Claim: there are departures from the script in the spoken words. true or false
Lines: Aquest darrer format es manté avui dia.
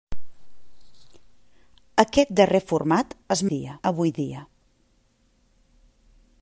true